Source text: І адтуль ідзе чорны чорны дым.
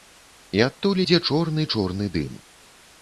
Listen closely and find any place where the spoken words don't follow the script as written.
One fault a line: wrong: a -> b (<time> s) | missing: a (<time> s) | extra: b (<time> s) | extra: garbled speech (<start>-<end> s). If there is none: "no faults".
no faults